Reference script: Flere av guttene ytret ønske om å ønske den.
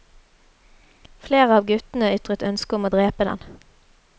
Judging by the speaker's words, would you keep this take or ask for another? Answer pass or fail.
fail